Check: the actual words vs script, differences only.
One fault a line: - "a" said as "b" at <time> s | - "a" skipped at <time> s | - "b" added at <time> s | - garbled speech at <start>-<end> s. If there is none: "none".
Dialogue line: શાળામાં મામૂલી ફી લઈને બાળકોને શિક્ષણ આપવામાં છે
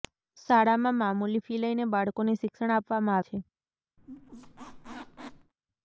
none